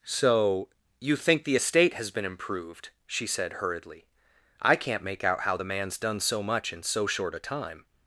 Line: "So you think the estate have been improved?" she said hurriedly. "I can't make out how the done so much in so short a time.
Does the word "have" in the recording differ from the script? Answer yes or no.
yes